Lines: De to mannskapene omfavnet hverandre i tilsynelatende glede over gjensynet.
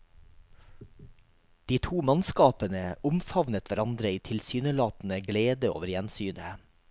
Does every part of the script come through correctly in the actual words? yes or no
yes